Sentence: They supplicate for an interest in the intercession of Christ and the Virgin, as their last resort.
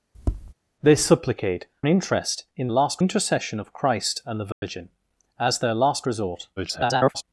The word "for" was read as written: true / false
false